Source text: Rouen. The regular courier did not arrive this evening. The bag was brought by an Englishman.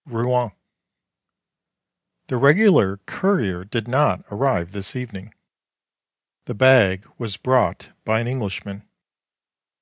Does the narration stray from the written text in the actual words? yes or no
no